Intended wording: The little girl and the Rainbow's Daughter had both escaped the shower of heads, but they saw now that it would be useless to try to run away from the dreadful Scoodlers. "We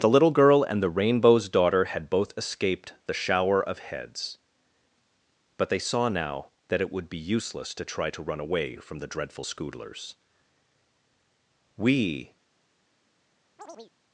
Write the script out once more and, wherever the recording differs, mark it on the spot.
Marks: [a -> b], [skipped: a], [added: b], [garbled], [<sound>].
The little girl and the Rainbow's Daughter had both escaped the shower of heads, but they saw now that it would be useless to try to run away from the dreadful Scoodlers. "We [chirp]